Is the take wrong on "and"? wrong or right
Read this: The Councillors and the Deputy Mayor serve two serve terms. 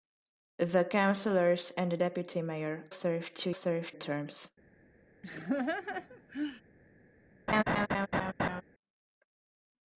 right